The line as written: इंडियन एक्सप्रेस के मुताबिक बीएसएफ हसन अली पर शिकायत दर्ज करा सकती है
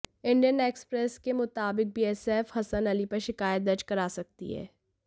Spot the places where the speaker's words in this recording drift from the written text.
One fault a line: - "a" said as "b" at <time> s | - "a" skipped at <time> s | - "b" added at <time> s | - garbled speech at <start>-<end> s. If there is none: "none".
none